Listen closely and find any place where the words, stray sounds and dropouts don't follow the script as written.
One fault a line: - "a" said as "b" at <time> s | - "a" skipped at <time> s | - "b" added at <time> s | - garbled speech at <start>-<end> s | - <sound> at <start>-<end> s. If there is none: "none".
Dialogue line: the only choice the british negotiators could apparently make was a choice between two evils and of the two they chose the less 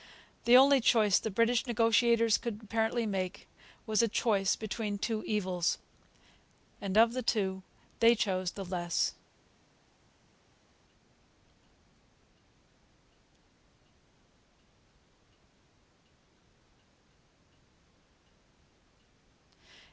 none